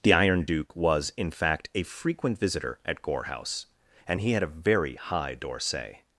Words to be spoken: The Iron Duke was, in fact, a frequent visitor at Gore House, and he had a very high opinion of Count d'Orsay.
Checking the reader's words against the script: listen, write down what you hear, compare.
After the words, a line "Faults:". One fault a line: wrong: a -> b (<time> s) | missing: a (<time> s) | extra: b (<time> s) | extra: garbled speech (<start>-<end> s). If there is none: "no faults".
The Iron Duke was, in fact, a frequent visitor at Gore House, and he had a very high d'Orsay.
Faults:
missing: opinion of Count (5.4 s)